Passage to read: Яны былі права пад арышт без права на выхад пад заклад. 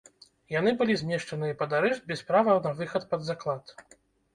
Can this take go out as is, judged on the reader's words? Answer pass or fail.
fail